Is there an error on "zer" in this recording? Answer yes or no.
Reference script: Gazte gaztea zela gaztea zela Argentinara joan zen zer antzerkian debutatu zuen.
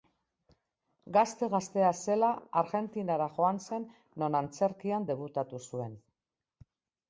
yes